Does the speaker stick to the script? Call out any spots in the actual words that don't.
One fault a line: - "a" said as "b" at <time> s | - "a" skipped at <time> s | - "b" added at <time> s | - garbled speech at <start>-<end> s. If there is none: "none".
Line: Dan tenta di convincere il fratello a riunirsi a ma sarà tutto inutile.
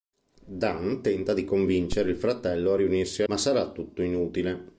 none